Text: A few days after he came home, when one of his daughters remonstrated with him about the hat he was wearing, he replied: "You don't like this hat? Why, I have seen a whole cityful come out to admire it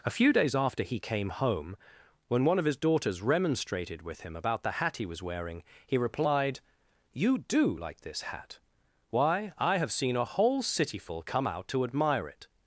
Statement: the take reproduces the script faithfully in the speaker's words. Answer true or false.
false